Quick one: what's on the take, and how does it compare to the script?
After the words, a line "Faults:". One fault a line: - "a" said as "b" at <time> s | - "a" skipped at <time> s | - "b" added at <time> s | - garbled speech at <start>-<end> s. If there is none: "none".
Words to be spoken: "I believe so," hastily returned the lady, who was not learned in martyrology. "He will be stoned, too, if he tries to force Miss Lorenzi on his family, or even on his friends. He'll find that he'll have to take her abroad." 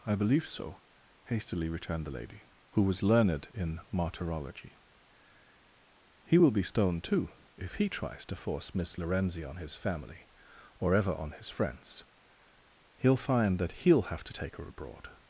"I believe so," hastily returned the lady, who was learned in martyrology. "He will be stoned, too, if he tries to force Miss Lorenzi on his family, or ever on his friends. He'll find that he'll have to take her abroad."
Faults:
- "not" skipped at 3.0 s
- "even" said as "ever" at 10.9 s